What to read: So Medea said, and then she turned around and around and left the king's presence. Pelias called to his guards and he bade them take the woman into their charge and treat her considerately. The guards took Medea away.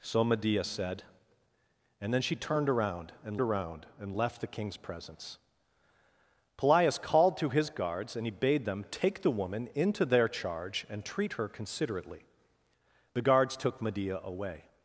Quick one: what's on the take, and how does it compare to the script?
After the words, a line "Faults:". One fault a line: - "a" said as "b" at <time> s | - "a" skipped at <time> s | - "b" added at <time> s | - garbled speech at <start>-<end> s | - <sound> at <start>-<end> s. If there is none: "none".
So Medea said, and then she turned around and around and left the king's presence. Pelias called to his guards and he bade them take the woman into their charge and treat her considerately. The guards took Medea away.
Faults:
none